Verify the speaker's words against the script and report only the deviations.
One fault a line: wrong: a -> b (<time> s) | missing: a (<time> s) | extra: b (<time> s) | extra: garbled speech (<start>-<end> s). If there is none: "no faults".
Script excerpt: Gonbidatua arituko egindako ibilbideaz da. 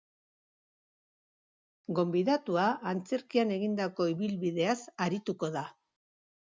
wrong: arituko -> antzerkian (3.0 s)
extra: arituko (5.1 s)